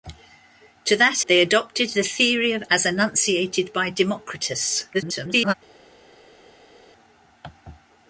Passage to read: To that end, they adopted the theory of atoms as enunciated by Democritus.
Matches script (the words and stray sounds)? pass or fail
fail